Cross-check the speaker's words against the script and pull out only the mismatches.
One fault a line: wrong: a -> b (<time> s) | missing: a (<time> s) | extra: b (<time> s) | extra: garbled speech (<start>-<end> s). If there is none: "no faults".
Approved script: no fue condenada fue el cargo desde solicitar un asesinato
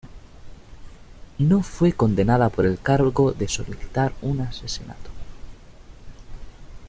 wrong: fue -> por (2.5 s)
wrong: desde -> de (3.3 s)